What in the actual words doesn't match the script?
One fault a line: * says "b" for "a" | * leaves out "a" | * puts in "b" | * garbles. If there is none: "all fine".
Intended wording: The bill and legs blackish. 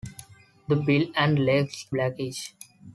all fine